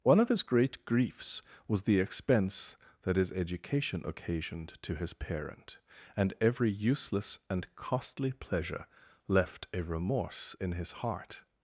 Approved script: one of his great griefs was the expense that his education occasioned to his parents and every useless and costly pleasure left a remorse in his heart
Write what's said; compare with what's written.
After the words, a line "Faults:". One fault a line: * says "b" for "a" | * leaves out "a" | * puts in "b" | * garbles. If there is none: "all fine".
one of his great griefs was the expense that his education occasioned to his parent and every useless and costly pleasure left a remorse in his heart
Faults:
* says "parent" for "parents"